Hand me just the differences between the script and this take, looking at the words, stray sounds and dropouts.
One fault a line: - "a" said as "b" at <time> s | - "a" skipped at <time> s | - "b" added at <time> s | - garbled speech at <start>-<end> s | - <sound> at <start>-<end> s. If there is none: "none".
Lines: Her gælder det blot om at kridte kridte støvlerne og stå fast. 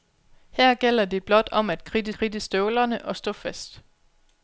none